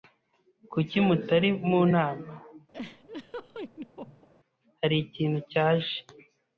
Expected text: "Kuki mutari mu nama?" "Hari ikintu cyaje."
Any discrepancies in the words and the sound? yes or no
yes